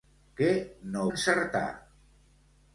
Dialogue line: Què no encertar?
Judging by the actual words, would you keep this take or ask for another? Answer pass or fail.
pass